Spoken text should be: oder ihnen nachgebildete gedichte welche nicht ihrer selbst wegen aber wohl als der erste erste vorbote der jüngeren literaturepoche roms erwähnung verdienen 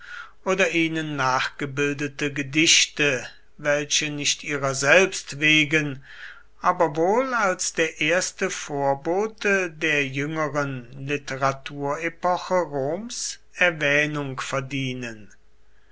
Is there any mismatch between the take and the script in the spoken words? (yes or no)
yes